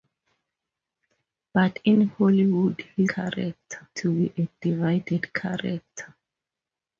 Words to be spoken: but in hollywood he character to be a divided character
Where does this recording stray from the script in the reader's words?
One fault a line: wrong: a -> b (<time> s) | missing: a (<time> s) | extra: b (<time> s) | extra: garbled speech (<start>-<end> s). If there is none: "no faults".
no faults